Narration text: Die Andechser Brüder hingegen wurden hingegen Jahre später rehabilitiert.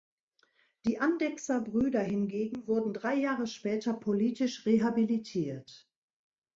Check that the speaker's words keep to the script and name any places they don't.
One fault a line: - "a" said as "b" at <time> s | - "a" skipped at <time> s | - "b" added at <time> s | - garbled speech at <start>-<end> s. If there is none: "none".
- "hingegen" said as "drei" at 2.9 s
- "politisch" added at 3.9 s